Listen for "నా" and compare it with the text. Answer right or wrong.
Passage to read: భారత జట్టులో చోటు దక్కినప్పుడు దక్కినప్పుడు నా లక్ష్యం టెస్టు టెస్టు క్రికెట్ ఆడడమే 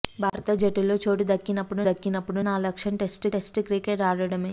right